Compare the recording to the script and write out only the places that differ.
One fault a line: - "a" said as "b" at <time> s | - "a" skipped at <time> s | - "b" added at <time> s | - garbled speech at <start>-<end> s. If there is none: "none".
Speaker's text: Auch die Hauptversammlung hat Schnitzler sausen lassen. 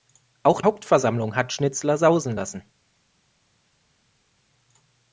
- "die" skipped at 0.6 s